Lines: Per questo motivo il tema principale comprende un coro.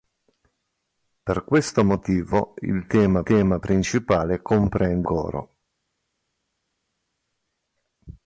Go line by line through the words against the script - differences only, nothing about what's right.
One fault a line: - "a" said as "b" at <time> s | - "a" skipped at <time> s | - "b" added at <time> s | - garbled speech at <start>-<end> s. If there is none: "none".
- "tema" added at 3.2 s
- "un" skipped at 5.1 s